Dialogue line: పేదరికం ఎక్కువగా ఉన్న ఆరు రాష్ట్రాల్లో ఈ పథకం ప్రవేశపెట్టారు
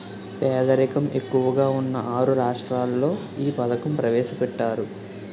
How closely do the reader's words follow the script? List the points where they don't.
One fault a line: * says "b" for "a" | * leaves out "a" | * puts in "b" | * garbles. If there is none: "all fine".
all fine